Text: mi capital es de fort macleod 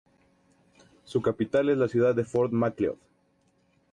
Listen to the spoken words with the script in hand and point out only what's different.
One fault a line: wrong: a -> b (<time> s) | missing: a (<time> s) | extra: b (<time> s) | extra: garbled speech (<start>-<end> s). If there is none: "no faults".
wrong: mi -> su (1.1 s)
extra: la ciudad (1.8 s)